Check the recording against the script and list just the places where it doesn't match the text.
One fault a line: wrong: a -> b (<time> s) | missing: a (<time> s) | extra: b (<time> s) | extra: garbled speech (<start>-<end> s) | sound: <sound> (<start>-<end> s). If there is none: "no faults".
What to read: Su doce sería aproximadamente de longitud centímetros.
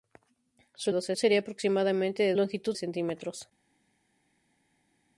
no faults